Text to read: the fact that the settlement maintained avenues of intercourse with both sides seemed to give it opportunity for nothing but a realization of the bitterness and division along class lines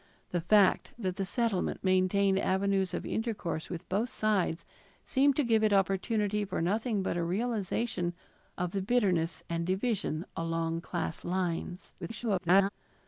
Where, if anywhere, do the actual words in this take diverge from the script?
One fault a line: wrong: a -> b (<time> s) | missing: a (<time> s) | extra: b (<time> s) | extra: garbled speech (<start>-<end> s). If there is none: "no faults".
extra: garbled speech (12.0-12.7 s)